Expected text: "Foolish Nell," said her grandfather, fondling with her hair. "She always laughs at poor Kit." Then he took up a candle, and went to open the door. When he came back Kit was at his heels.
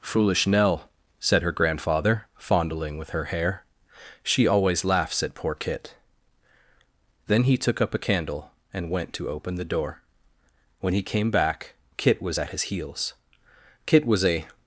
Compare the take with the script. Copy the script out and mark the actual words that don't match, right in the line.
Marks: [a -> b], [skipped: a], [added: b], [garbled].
"Foolish Nell," said her grandfather, fondling with her hair. "She always laughs at poor Kit." Then he took up a candle, and went to open the door. When he came back Kit was at his heels. [added: Kit was a]